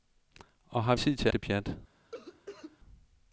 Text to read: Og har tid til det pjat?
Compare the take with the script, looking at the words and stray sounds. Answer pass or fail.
fail